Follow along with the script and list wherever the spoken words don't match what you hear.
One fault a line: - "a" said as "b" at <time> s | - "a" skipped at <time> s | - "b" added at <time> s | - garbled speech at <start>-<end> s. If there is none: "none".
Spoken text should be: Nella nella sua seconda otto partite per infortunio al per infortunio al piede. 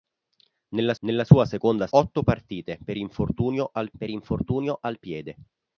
none